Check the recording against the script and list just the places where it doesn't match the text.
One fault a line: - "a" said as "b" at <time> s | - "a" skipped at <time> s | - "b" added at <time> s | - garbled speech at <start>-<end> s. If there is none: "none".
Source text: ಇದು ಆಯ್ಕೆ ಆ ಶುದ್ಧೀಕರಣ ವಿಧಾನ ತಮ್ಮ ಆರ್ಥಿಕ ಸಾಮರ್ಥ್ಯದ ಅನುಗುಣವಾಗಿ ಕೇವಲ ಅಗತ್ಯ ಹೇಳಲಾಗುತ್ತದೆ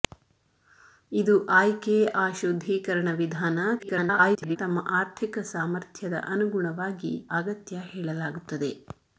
- garbled speech at 3.8-4.6 s
- "ಕೇವಲ" skipped at 7.1 s